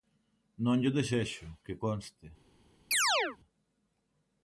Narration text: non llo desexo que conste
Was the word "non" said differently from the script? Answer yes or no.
no